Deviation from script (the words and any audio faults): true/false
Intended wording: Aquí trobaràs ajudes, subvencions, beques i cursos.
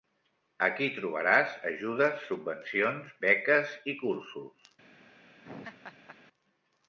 true